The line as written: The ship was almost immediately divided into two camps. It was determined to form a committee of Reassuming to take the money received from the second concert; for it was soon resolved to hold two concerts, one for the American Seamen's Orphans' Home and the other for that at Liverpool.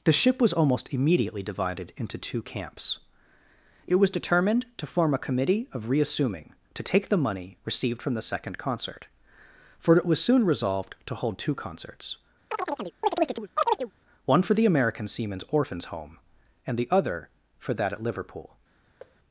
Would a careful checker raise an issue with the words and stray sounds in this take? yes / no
yes